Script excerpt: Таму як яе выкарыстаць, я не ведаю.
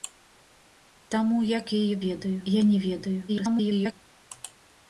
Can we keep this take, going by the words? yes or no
no